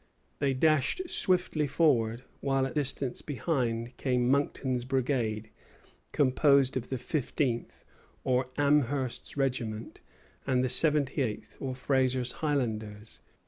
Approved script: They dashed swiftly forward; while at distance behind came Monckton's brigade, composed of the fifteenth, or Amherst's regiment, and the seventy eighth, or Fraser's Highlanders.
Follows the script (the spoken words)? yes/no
yes